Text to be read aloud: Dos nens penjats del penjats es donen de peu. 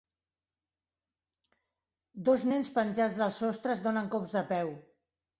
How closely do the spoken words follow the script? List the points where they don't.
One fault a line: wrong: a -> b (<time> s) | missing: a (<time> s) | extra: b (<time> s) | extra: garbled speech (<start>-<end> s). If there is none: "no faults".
wrong: penjats -> sostre (3.4 s)
extra: cops (4.1 s)